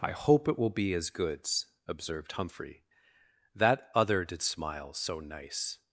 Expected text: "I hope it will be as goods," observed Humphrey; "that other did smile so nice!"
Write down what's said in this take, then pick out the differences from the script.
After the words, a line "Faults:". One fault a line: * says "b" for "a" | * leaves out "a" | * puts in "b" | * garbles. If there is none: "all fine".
"I hope it will be as goods," observed Humphrey; "that other did smile so nice!"
Faults:
all fine